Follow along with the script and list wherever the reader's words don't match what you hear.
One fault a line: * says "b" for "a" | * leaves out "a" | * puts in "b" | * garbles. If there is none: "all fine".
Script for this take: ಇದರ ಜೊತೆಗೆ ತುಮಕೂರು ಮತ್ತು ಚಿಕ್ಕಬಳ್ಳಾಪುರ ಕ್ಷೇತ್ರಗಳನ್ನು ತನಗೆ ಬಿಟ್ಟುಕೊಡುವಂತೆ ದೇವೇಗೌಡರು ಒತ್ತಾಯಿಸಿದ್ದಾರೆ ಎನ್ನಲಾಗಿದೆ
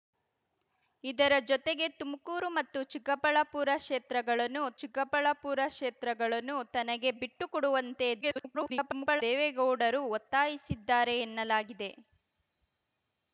* puts in "ಚಿಕ್ಕಬಳ್ಳಾಪುರ ಕ್ಷೇತ್ರಗಳನ್ನು"
* garbles